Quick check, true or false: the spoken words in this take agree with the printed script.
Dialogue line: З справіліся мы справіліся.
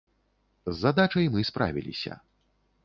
false